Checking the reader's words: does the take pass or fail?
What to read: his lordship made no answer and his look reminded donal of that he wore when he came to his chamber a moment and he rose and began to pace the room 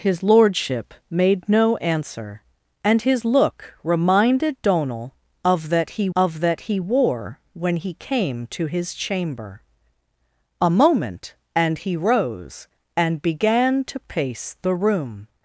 fail